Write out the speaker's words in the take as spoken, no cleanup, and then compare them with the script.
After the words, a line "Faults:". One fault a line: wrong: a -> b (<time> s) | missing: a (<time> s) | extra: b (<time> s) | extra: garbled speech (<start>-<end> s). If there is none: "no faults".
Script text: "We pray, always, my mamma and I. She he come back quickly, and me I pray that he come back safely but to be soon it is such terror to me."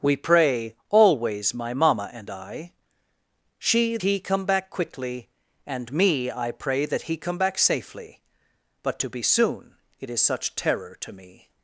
"We pray, always, my mamma and I. She he come back quickly, and me I pray that he come back safely but to be soon it is such terror to me."
Faults:
no faults